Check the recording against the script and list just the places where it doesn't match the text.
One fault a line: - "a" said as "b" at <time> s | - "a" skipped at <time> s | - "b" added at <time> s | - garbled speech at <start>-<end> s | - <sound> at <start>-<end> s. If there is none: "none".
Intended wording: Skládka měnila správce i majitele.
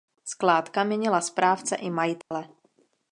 - dropout at 2.2-2.3 s